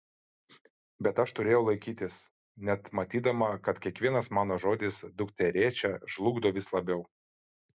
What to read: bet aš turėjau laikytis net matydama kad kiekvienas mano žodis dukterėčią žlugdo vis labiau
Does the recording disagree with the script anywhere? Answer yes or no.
no